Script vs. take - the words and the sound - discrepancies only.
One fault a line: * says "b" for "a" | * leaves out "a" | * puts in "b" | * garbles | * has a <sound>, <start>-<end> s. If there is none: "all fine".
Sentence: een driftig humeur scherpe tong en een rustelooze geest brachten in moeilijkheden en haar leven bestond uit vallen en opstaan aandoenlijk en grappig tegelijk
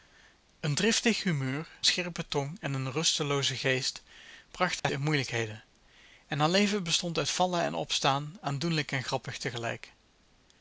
* has a dropout, 4.8-4.8 s